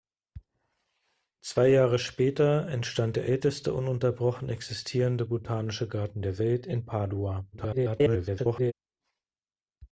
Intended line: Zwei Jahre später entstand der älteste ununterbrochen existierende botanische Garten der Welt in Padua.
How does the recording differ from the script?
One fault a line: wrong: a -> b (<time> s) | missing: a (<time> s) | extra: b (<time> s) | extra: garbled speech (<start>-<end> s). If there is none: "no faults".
extra: garbled speech (7.5-8.7 s)